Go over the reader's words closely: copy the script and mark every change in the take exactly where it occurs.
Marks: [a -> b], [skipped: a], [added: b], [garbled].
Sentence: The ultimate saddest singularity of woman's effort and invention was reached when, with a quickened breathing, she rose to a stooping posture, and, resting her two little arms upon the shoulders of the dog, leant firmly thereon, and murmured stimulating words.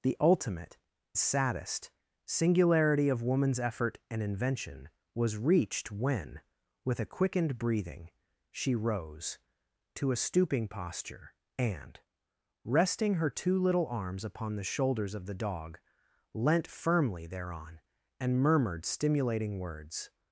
The ultimate saddest singularity of woman's effort and invention was reached when, with a quickened breathing, she rose to a stooping posture, and, resting her two little arms upon the shoulders of the dog, leant firmly thereon, and murmured stimulating words.